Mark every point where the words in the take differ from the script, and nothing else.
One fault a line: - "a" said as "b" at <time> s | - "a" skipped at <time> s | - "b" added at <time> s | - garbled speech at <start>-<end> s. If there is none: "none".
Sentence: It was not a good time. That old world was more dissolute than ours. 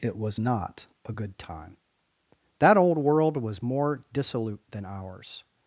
none